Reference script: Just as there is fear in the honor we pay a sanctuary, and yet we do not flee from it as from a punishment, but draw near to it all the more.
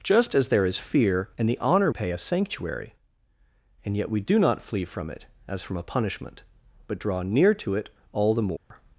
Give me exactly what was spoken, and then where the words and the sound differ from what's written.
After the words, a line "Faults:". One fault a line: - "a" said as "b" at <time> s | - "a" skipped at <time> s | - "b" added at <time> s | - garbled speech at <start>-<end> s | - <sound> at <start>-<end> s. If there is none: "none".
Just as there is fear in the honor pay a sanctuary, and yet we do not flee from it as from a punishment, but draw near to it all the more.
Faults:
- "we" skipped at 1.9 s
- dropout at 8.6-8.7 s